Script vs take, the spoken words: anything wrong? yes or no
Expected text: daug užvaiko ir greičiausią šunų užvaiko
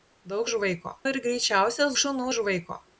no